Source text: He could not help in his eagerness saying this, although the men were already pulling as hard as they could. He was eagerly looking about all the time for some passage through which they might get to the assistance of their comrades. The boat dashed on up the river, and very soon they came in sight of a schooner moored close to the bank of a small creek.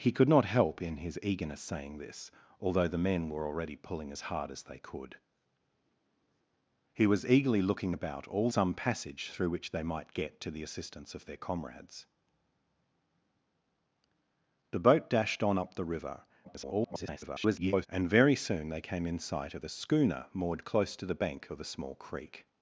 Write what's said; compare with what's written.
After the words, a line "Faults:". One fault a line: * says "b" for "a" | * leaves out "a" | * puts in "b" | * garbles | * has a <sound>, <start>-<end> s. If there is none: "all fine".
He could not help in his eagerness saying this, although the men were already pulling as hard as they could. He was eagerly looking about all some passage through which they might get to the assistance of their comrades. The boat dashed on up the river, [garbled] and very soon they came in sight of a schooner moored close to the bank of a small creek.
Faults:
* leaves out "the time for"
* garbles